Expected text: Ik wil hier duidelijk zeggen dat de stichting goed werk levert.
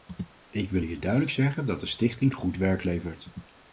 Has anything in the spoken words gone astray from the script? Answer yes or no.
no